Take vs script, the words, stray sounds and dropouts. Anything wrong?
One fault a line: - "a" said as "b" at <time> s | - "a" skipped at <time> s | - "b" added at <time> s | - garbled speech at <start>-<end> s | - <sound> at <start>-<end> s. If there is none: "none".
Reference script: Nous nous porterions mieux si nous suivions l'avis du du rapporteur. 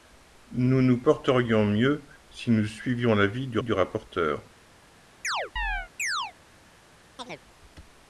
- chirp at 5.2-6.3 s
- chirp at 7.2-7.4 s